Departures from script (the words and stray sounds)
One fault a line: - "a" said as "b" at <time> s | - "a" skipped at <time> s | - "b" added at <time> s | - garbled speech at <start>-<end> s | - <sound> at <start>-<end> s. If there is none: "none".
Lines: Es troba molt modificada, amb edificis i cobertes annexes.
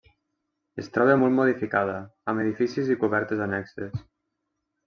none